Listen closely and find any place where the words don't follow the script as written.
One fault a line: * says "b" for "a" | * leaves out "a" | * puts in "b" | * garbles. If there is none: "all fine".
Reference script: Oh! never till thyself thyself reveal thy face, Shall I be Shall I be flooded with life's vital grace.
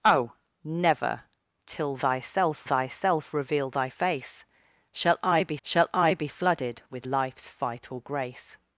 all fine